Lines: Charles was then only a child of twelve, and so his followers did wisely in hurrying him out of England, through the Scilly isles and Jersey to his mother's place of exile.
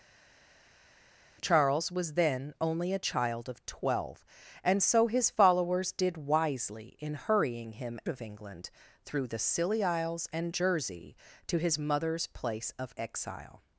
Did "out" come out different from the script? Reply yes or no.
yes